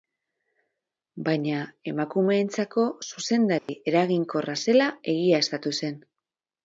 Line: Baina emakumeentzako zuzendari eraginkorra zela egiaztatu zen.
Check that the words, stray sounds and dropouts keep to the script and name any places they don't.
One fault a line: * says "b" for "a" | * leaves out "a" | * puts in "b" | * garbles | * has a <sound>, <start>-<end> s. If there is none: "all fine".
* has a dropout, 3.6-3.7 s